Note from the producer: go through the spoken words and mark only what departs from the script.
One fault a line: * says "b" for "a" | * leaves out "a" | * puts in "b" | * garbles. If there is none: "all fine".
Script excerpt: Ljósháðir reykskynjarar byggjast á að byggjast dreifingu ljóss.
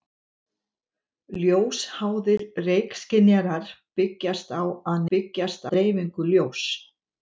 all fine